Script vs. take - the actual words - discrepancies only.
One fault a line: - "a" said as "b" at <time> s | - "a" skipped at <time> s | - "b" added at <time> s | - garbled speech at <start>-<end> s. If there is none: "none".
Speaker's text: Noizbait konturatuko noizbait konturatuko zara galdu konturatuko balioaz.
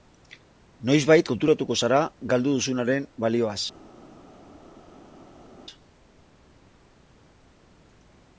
- "noizbait konturatuko" skipped at 1.8 s
- "konturatuko" said as "duzunaren" at 2.6 s